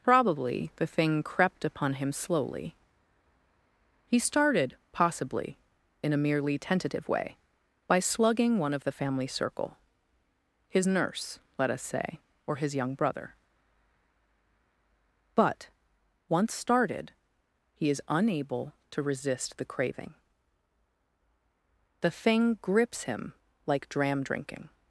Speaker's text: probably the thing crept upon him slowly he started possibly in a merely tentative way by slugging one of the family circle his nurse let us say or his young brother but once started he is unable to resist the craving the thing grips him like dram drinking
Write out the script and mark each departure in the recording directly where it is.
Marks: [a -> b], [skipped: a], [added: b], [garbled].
probably the thing crept upon him slowly he started possibly in a merely tentative way by slugging one of the family circle his nurse let us say or his young brother but once started he is unable to resist the craving the thing grips him like dram drinking